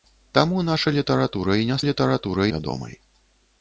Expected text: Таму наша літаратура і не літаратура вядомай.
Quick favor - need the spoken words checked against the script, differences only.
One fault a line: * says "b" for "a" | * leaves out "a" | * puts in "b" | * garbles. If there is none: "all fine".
all fine